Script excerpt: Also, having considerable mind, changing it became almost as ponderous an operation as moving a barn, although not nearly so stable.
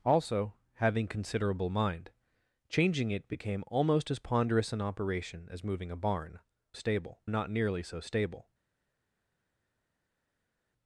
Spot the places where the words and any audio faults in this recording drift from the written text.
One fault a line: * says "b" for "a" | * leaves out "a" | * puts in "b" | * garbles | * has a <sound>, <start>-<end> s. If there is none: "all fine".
* says "stable" for "although"